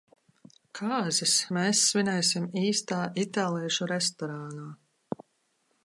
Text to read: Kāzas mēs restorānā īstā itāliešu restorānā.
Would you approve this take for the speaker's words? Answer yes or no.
no